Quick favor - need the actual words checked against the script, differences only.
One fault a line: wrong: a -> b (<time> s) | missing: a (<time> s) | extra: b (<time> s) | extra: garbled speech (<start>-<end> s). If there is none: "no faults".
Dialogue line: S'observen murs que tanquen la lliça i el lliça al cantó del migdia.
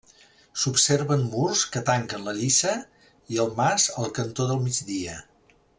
wrong: lliça -> mas (3.6 s)